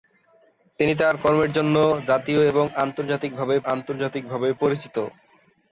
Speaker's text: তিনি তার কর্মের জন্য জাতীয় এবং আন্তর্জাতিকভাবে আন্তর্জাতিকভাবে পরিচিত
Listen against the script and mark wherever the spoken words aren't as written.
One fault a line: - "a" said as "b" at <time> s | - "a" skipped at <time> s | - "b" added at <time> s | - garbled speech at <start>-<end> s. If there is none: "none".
none